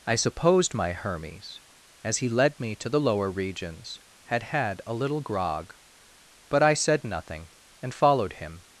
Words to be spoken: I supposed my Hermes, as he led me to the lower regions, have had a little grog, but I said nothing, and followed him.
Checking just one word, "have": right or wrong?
wrong